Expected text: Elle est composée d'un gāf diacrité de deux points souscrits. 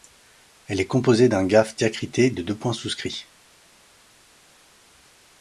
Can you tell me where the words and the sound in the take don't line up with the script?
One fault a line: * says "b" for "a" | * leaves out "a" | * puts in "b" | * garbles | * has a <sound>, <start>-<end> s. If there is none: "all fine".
all fine